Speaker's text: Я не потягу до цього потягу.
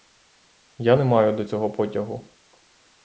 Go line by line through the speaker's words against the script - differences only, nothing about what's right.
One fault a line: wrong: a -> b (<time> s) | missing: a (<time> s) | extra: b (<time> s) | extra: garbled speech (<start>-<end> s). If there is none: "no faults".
wrong: потягу -> маю (1.0 s)